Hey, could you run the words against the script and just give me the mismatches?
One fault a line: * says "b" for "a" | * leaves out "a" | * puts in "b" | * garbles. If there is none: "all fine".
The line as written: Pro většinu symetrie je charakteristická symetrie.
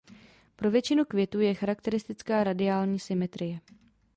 * says "květů" for "symetrie"
* puts in "radiální"